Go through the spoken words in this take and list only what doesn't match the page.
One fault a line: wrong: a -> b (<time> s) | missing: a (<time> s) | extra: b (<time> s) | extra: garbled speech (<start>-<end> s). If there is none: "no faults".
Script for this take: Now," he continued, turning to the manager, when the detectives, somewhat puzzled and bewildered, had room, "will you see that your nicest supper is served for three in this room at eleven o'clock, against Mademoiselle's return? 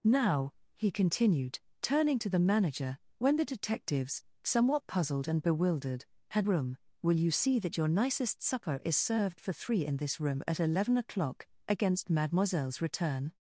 no faults